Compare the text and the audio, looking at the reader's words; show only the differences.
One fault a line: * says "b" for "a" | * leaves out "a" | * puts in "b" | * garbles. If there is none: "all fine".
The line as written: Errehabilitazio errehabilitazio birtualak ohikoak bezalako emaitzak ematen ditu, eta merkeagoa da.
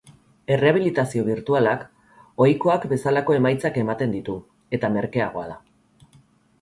* leaves out "errehabilitazio"